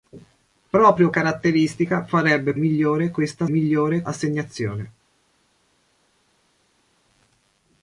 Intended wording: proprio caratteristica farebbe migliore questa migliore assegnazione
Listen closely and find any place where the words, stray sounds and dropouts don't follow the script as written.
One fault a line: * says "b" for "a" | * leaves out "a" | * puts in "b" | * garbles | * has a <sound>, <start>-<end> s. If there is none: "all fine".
all fine